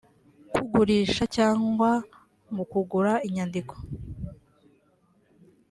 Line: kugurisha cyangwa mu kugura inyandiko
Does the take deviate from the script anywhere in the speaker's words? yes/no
no